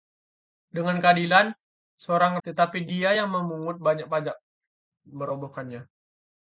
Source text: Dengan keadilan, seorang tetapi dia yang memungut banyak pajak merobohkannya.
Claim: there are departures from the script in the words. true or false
false